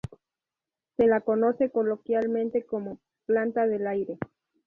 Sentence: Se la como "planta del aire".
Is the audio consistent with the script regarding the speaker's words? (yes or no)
no